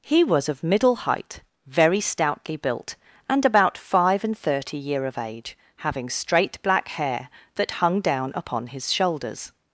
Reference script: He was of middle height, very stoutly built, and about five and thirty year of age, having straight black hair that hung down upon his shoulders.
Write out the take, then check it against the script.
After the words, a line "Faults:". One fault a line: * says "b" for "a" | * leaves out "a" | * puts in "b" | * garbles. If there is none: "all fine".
He was of middle height, very stoutly built, and about five and thirty year of age, having straight black hair that hung down upon his shoulders.
Faults:
all fine